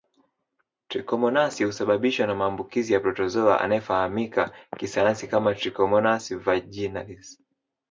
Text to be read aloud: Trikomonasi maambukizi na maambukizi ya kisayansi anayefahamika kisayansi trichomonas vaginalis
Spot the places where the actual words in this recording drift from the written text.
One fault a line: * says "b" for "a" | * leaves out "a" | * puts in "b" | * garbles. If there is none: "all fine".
* says "husababishwa" for "maambukizi"
* says "protozoa" for "kisayansi"
* puts in "kama"